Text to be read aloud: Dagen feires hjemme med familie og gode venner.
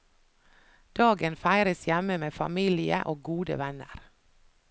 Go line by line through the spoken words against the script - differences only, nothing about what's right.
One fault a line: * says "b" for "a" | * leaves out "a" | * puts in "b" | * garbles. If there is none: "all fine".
all fine